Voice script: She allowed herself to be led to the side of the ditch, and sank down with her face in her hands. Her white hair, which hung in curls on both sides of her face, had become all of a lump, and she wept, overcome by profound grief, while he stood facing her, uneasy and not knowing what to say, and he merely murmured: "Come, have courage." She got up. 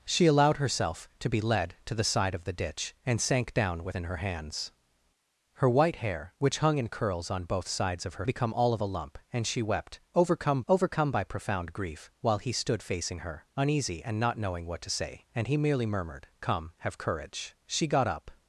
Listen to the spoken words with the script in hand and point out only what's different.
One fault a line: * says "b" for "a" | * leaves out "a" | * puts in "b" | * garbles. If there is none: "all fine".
* leaves out "her face"
* leaves out "face had"
* puts in "overcome"